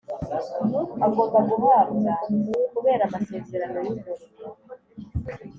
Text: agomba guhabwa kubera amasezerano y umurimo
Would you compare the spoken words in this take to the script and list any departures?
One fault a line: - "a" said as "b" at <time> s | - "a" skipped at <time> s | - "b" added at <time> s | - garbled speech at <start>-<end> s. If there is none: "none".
none